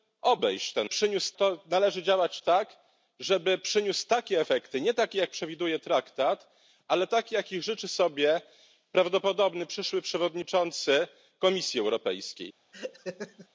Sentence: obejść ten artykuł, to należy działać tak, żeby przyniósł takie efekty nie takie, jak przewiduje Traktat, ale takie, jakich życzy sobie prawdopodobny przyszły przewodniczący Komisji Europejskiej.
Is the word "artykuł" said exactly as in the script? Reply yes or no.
no